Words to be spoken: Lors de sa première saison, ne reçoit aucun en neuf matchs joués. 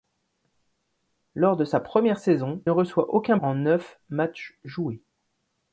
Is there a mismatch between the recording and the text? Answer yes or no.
no